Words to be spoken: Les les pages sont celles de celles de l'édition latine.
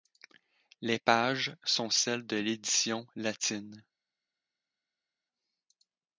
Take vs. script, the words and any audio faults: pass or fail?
fail